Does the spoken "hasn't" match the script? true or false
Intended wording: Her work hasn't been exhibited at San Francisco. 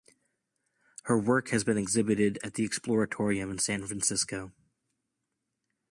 false